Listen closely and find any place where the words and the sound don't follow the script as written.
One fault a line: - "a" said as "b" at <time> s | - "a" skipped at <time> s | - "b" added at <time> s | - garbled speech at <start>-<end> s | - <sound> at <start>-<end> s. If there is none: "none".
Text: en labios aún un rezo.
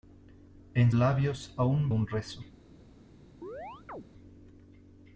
- chirp at 3.4-4.1 s